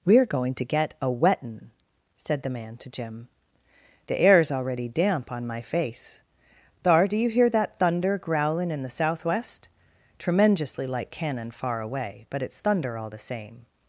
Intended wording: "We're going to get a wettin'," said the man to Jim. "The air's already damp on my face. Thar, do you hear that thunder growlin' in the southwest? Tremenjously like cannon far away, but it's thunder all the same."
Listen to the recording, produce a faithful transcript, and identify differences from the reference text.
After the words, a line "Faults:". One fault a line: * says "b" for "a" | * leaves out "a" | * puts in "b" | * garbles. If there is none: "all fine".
"We're going to get a wettin'," said the man to Jim. "The air's already damp on my face. Thar, do you hear that thunder growlin' in the southwest? Tremenjously like cannon far away, but it's thunder all the same."
Faults:
all fine